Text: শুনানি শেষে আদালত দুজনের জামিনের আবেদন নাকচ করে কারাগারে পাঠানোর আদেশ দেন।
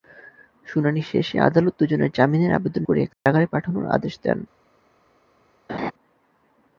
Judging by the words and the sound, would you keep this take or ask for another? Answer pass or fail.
fail